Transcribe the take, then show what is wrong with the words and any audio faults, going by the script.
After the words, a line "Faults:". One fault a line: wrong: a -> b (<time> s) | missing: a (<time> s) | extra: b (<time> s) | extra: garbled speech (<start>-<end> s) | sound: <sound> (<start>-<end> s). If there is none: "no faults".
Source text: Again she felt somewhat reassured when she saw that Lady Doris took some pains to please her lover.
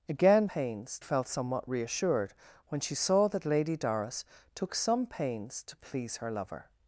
Again pains felt somewhat reassured when she saw that Lady Doris took some pains to please her lover.
Faults:
wrong: she -> pains (0.4 s)